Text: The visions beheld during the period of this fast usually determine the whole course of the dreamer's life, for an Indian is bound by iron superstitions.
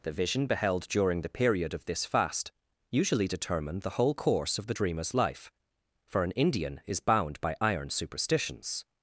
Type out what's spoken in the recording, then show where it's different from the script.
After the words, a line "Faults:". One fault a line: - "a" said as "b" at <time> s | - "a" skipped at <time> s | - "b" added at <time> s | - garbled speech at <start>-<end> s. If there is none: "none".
The vision beheld during the period of this fast usually determine the whole course of the dreamer's life, for an Indian is bound by iron superstitions.
Faults:
- "visions" said as "vision" at 0.1 s